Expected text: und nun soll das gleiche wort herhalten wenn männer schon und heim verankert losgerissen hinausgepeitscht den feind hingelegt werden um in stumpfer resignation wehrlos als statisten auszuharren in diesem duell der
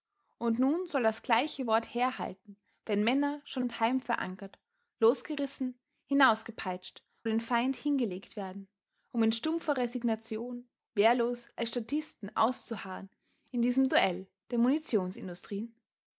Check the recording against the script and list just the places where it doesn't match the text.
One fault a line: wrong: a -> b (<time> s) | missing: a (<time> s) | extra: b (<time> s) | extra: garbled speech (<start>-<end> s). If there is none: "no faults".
no faults